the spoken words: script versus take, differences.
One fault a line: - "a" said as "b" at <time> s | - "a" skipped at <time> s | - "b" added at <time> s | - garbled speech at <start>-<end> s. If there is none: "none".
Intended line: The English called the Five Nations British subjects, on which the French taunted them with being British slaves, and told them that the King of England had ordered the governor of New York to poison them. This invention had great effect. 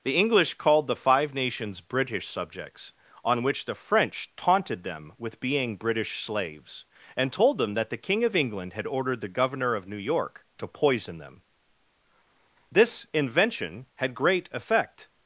none